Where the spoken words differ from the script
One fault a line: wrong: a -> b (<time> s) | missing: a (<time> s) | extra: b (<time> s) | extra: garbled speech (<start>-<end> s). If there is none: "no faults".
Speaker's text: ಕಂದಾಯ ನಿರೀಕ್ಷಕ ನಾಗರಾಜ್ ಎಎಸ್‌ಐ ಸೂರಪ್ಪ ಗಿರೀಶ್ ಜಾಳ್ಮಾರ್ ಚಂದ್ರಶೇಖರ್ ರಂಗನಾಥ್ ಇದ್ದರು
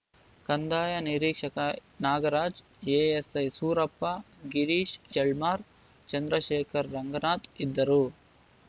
no faults